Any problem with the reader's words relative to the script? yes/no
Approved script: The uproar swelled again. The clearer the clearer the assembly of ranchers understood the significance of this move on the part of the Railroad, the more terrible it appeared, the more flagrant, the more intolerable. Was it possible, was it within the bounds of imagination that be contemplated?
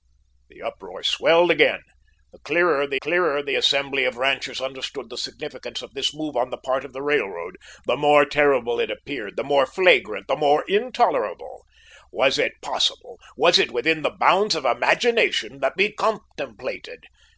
no